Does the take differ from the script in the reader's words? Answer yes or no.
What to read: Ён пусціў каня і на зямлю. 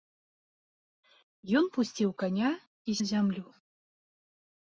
no